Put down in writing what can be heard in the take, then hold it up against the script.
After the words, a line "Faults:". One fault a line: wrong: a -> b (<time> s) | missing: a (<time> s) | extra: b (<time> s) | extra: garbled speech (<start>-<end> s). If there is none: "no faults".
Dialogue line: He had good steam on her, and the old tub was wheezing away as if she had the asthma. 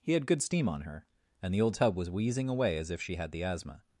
He had good steam on her, and the old tub was wheezing away as if she had the asthma.
Faults:
no faults